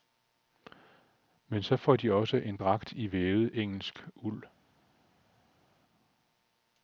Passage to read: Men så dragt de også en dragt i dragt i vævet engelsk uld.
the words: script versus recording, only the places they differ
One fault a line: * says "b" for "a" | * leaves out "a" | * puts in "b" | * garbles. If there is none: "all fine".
* says "får" for "dragt"
* leaves out "dragt i"